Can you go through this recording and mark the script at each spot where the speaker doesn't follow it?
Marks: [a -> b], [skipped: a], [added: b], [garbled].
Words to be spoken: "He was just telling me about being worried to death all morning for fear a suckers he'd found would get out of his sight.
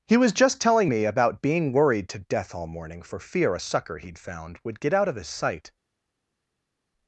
"He was just telling me about being worried to death all morning for fear a [suckers -> sucker] he'd found would get out of his sight.